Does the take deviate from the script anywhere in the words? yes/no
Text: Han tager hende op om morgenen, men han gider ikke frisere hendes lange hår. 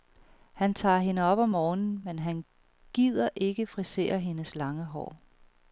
no